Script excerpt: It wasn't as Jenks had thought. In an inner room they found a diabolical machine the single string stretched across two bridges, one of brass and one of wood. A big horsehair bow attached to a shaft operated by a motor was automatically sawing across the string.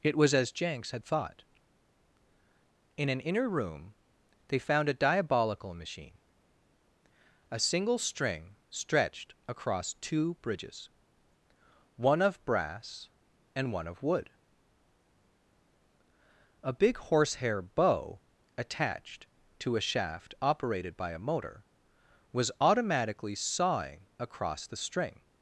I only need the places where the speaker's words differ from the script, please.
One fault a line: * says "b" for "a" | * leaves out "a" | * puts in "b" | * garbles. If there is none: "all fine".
* says "was" for "wasn't"
* says "a" for "the"